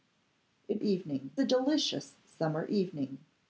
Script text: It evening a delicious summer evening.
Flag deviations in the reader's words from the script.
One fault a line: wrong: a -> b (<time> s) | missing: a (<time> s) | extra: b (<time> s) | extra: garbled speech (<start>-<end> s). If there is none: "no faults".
no faults